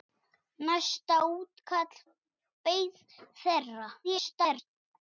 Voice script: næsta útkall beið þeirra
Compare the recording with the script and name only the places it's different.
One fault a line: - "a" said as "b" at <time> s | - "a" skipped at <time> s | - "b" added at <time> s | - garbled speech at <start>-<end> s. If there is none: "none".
- garbled speech at 4.0-4.7 s